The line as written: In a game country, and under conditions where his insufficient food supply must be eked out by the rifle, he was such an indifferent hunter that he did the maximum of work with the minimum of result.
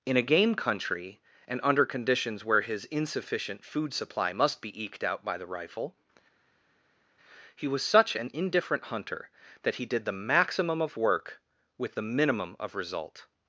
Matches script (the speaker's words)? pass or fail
pass